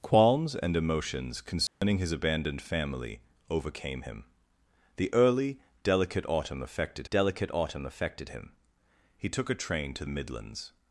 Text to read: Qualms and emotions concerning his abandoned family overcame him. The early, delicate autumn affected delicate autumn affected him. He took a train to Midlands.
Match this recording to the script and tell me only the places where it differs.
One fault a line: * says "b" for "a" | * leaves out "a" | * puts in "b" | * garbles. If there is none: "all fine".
all fine